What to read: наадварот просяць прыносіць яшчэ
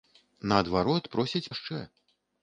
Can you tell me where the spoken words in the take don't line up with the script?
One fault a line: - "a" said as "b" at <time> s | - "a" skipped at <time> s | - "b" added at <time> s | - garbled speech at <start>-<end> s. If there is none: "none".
- "прыносіць" skipped at 1.5 s